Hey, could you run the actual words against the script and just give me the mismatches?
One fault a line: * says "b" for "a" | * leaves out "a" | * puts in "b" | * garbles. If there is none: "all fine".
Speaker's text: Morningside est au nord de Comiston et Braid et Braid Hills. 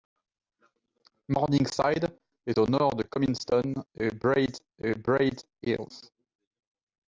all fine